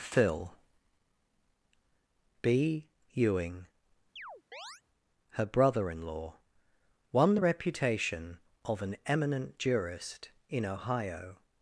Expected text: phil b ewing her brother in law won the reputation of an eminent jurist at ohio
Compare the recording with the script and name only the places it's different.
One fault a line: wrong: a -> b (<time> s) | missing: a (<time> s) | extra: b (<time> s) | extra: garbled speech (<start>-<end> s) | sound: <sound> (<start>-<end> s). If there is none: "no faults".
sound: chirp (4.2-4.8 s)
wrong: at -> in (10.5 s)